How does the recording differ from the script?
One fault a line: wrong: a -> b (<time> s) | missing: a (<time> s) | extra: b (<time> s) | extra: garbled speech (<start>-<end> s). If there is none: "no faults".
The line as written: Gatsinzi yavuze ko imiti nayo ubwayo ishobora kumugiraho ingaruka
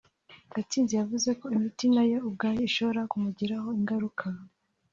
no faults